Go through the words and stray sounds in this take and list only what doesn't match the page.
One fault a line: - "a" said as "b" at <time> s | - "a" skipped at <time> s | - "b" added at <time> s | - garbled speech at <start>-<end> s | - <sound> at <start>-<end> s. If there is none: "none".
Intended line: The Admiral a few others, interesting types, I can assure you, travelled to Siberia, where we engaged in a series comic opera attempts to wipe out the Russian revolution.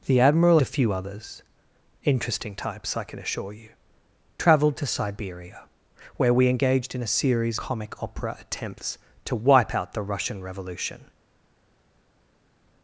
none